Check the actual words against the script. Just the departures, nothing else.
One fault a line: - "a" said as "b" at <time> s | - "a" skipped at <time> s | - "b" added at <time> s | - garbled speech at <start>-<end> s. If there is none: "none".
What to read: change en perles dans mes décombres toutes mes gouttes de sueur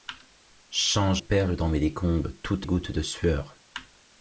- "en" skipped at 1.2 s
- "mes" skipped at 2.7 s